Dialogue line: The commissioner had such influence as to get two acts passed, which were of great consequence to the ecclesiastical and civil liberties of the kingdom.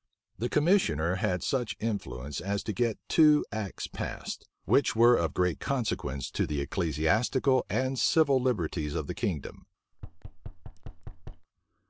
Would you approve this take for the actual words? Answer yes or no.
yes